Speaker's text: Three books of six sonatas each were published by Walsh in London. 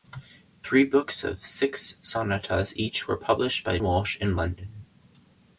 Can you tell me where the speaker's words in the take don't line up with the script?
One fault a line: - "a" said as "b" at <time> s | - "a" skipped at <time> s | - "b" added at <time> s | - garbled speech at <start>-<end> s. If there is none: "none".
none